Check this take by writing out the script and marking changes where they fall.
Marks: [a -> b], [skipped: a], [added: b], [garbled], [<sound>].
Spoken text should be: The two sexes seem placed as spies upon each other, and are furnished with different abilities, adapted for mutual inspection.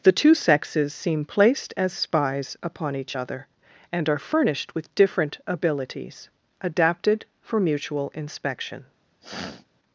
The two sexes seem placed as spies upon each other, and are furnished with different abilities, adapted for mutual inspection. [sniff]